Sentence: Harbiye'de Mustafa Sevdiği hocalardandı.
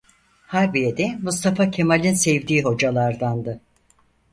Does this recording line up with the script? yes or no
no